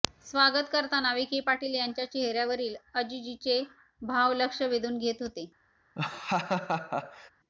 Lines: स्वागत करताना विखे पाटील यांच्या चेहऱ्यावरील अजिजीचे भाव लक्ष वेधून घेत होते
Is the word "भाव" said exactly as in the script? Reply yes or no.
yes